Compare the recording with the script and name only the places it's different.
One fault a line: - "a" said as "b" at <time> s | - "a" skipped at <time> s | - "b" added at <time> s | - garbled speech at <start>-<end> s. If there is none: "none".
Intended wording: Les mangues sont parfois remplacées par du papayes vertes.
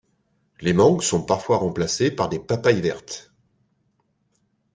- "du" said as "des" at 2.3 s